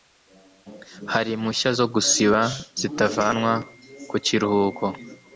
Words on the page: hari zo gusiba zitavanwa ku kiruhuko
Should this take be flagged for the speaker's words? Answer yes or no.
yes